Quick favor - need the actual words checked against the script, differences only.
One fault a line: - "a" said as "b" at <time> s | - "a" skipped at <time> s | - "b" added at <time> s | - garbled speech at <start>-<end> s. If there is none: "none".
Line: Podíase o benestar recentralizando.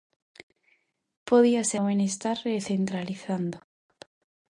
none